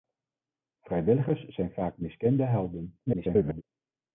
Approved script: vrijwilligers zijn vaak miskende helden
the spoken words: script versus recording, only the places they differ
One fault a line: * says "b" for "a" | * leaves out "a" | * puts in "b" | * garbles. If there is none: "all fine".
* garbles